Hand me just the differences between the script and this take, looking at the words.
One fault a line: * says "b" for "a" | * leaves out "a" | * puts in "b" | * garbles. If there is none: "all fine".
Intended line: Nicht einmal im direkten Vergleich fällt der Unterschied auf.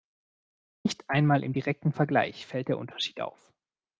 all fine